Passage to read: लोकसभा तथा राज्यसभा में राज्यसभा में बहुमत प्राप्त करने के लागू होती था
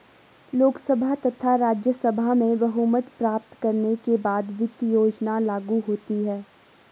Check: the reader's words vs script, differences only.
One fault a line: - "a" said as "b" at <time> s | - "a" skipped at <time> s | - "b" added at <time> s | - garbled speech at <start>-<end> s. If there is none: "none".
- "राज्यसभा में" skipped at 2.6 s
- "बाद वित्त योजना" added at 4.2 s
- "था" said as "है" at 6.2 s